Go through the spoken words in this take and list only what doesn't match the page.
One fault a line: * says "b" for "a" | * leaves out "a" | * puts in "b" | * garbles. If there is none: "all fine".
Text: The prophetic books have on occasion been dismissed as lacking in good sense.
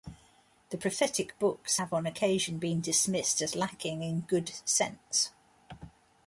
all fine